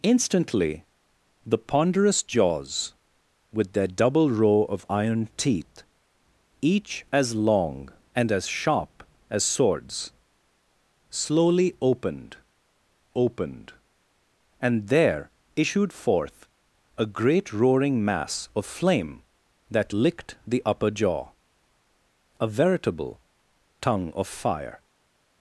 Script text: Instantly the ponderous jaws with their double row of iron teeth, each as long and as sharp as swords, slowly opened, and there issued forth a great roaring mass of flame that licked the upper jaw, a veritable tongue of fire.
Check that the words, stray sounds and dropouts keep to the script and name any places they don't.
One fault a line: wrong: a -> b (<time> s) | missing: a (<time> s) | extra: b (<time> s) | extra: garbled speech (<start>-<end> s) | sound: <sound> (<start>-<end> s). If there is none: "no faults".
extra: opened (13.2 s)